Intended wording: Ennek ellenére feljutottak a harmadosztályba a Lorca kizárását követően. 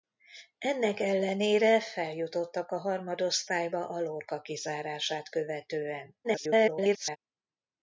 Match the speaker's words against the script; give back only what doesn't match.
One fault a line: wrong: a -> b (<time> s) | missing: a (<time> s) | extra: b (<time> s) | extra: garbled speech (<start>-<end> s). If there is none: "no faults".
extra: garbled speech (6.2-7.2 s)